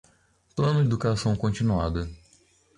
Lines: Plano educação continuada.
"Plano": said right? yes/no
yes